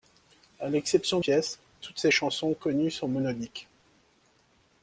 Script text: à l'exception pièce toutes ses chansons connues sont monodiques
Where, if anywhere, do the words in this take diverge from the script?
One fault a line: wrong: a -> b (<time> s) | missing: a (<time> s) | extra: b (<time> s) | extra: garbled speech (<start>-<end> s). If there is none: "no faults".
no faults